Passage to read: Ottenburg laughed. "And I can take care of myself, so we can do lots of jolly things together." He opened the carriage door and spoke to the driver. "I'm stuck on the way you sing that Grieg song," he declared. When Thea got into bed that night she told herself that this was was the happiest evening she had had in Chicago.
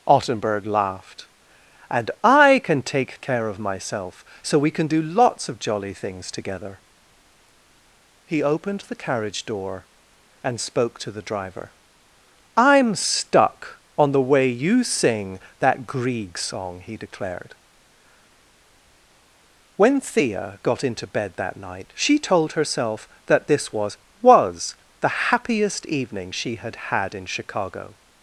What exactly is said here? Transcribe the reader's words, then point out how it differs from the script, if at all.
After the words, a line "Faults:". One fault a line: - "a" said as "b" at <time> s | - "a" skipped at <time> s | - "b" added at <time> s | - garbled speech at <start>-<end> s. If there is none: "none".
Ottenburg laughed. "And I can take care of myself, so we can do lots of jolly things together." He opened the carriage door and spoke to the driver. "I'm stuck on the way you sing that Grieg song," he declared. When Thea got into bed that night she told herself that this was was the happiest evening she had had in Chicago.
Faults:
none